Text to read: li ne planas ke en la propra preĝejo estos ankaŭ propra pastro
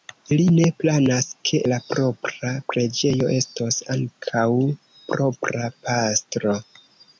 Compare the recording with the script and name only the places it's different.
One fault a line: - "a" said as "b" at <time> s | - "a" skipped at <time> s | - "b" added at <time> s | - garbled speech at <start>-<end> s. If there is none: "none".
- "en" skipped at 1.6 s